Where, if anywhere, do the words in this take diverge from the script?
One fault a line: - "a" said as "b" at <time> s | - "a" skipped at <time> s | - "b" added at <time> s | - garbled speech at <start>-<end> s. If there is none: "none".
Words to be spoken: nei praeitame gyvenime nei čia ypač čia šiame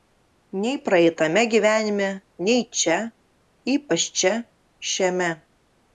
none